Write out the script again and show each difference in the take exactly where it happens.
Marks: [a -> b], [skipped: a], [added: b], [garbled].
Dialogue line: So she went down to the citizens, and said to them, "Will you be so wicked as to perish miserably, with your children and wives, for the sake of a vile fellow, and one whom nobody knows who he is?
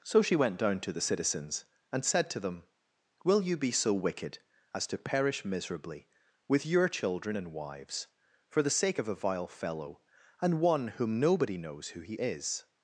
So she went down to the citizens, and said to them, "Will you be so wicked as to perish miserably, with your children and wives, for the sake of a vile fellow, and one whom nobody knows who he is?